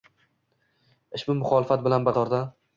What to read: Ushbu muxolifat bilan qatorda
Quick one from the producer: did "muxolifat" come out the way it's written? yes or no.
yes